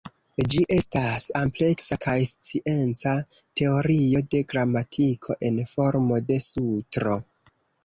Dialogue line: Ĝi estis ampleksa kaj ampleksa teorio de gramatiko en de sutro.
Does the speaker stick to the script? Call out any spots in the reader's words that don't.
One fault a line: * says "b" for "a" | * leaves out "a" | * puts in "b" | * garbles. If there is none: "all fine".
* says "estas" for "estis"
* says "scienca" for "ampleksa"
* puts in "formo"